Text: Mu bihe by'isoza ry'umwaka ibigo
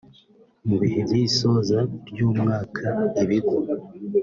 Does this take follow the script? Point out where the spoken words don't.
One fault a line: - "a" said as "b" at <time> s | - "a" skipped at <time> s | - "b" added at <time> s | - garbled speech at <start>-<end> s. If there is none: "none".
none